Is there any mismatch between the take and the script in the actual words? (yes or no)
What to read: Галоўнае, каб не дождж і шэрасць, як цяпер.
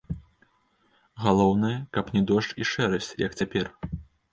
no